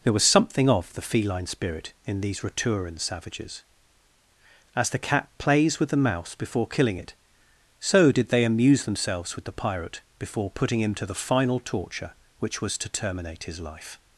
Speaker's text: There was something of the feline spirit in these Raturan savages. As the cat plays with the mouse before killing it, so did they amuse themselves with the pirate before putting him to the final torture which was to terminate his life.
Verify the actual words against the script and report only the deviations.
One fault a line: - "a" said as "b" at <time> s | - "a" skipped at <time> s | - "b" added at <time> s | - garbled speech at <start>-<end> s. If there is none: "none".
none